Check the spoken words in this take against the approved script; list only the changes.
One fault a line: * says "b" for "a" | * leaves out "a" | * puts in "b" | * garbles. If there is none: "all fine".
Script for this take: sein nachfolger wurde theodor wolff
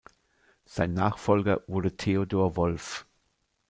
all fine